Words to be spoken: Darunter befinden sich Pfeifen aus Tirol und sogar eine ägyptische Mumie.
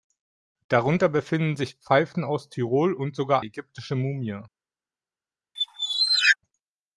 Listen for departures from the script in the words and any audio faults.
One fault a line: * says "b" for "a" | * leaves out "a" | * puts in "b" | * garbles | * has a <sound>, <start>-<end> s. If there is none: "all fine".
* leaves out "eine"
* has a squeak, 5.6-6.4 s